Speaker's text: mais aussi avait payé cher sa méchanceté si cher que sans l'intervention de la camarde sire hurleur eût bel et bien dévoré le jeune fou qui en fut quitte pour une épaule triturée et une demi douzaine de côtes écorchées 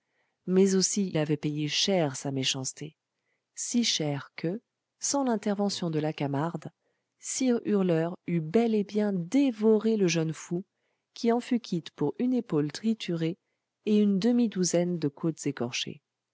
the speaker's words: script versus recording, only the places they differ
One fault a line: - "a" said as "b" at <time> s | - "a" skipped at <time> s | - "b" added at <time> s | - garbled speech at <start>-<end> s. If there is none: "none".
none